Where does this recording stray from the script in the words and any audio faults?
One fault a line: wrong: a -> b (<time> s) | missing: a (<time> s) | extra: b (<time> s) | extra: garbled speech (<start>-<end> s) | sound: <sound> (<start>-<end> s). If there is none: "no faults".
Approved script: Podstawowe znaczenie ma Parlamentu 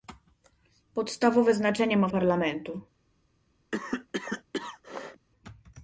sound: cough (3.7-5.3 s)